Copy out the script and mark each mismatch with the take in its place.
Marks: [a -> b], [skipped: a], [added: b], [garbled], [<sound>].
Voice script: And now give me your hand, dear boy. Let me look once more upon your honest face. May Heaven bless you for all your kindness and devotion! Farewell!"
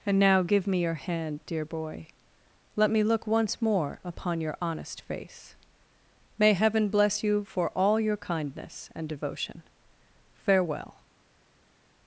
And now give me your hand, dear boy. Let me look once more upon your honest face. May Heaven bless you for all your kindness and devotion! Farewell!"